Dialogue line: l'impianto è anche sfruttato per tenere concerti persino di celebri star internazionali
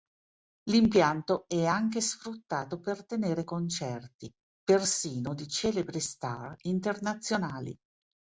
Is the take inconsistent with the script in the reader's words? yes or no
no